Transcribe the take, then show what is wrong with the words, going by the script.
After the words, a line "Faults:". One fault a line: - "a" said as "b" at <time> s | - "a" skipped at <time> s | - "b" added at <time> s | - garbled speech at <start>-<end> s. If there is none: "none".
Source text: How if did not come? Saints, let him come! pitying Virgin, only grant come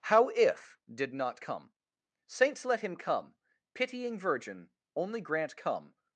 How if did not come? Saints, let him come! pitying Virgin, only grant come
Faults:
none